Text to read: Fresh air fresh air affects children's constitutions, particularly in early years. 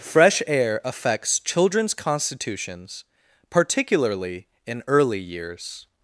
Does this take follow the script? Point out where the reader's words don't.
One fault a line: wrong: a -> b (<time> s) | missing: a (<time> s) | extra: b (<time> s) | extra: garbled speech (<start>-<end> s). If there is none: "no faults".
missing: fresh air (0.8 s)